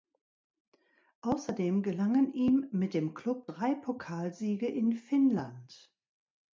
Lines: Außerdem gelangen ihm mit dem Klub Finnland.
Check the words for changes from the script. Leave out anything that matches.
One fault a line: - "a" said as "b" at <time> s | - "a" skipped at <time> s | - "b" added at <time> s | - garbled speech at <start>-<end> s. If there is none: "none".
- "drei Pokalsiege in" added at 3.5 s